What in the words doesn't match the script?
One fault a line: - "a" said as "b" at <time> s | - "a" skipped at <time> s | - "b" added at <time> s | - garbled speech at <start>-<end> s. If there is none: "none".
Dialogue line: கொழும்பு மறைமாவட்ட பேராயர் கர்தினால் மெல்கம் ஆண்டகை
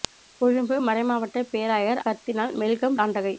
none